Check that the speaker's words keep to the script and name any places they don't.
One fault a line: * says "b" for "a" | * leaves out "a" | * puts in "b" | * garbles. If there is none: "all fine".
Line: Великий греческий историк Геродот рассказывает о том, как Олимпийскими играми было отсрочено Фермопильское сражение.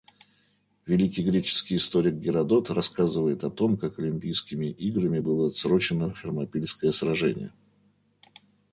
all fine